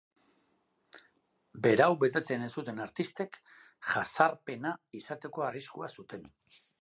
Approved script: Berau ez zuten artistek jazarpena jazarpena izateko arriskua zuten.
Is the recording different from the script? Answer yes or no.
yes